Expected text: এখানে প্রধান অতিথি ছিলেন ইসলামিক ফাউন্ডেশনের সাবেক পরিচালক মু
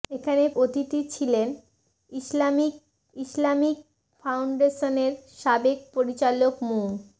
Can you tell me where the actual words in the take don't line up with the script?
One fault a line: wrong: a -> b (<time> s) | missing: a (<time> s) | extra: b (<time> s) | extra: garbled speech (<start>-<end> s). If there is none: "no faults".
missing: প্রধান (0.4 s)
extra: ইসলামিক (3.1 s)